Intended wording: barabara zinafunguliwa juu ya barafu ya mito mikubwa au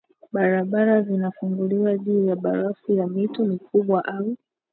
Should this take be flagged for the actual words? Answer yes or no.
no